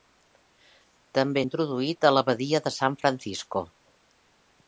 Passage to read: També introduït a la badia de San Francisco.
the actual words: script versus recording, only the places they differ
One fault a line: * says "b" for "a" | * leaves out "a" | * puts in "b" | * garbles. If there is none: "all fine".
all fine